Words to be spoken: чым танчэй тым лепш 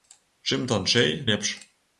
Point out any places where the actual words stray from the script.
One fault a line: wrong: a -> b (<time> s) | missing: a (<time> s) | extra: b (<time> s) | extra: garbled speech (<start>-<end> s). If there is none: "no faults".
missing: тым (1.1 s)